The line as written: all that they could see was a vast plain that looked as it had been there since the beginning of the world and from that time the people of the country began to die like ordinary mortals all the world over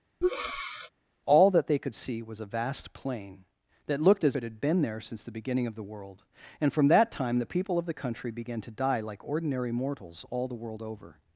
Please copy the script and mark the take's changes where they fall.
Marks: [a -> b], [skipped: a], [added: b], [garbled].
all that they could see was a vast plain that looked as it had been there since the beginning of the world and from that time the people of the country began to die like ordinary mortals all the world over